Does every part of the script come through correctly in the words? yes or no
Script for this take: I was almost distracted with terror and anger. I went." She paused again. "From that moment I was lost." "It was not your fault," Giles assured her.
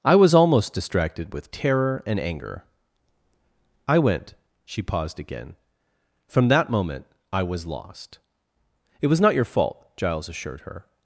yes